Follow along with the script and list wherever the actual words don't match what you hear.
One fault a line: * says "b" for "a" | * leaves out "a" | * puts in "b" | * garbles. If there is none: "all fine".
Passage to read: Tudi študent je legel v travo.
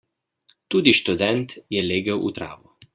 all fine